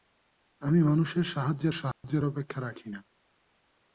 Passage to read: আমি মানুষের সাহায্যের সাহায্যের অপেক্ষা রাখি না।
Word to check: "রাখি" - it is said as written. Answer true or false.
true